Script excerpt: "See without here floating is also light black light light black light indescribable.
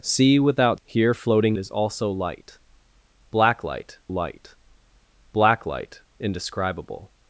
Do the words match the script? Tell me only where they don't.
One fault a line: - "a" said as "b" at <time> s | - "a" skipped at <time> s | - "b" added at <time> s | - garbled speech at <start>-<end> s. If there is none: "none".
none